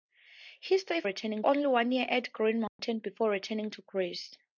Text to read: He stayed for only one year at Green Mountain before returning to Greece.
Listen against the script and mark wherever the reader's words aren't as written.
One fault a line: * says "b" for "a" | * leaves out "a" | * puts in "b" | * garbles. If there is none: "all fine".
* says "returning" for "for"